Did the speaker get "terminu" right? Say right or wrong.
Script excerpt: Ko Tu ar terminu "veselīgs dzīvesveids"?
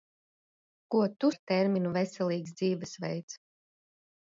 right